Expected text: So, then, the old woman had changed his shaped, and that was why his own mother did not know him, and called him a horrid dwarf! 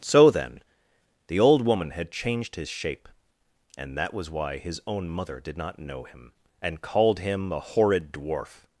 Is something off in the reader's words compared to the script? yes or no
yes